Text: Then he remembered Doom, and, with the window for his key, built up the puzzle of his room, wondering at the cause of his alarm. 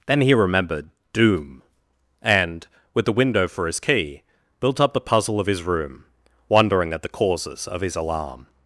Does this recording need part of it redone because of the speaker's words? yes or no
yes